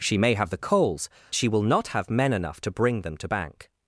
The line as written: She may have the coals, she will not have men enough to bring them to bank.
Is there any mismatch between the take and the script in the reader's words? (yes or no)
no